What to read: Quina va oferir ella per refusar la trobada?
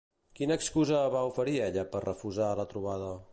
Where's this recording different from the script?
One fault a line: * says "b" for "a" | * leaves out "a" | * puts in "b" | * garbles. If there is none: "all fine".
* puts in "excusa"